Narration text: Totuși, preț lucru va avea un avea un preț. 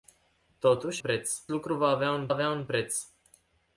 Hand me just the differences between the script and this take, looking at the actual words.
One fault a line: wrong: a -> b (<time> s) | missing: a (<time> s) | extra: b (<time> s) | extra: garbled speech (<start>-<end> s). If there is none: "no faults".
no faults